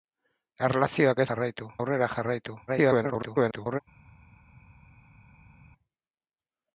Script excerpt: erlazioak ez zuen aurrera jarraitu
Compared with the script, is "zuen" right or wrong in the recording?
wrong